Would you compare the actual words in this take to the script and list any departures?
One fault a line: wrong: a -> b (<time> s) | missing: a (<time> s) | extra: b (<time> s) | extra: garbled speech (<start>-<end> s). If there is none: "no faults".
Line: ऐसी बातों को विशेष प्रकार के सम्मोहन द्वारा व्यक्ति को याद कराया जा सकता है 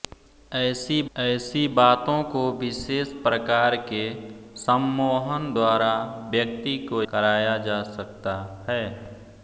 extra: ऐसी (1.1 s)
missing: याद (7.0 s)